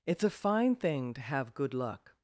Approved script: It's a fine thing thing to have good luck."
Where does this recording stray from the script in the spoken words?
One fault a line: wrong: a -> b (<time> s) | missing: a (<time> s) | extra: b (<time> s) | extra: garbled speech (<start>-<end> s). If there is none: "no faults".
missing: thing (1.1 s)